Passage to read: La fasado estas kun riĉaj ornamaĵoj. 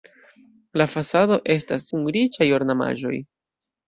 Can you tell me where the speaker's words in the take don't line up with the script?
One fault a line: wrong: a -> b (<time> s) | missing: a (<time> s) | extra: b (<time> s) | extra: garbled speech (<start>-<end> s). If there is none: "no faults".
no faults